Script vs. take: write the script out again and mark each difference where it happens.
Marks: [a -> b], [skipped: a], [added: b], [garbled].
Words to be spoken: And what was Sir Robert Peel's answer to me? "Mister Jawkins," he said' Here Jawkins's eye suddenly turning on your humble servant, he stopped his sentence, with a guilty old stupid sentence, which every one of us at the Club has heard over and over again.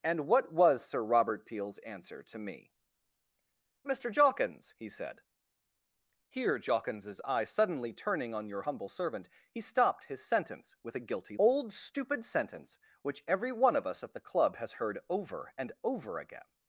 And what was Sir Robert Peel's answer to me? "Mister Jawkins," he said' Here Jawkins's eye suddenly turning on your humble servant, he stopped his sentence, with a guilty old stupid sentence, which every one of us at the Club has heard over and over again.